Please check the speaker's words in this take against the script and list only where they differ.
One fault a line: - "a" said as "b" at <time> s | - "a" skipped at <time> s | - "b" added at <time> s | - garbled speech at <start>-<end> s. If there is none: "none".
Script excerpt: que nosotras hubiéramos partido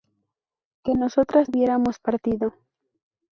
none